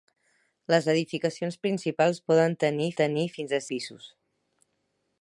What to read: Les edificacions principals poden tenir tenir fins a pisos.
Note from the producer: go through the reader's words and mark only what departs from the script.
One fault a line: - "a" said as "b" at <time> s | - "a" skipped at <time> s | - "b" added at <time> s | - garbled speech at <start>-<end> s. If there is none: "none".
none